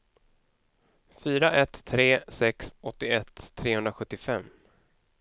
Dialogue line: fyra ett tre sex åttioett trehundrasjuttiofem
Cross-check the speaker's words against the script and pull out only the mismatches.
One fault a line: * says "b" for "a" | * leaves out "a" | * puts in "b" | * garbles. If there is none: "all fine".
all fine